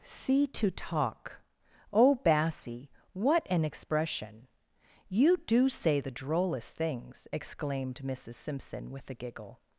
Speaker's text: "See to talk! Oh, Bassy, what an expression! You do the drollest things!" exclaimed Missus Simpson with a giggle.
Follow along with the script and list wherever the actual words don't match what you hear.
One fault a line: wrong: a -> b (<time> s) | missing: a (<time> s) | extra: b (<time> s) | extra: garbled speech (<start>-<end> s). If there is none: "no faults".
extra: say (5.7 s)